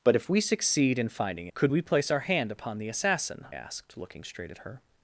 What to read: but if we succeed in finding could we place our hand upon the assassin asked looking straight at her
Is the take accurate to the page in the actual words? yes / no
yes